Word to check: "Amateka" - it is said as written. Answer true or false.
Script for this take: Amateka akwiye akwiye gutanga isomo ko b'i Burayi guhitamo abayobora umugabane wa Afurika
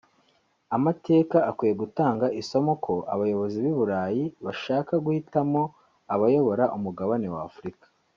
true